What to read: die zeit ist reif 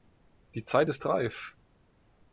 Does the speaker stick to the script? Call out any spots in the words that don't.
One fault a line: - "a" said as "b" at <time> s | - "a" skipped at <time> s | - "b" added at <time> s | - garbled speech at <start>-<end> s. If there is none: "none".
none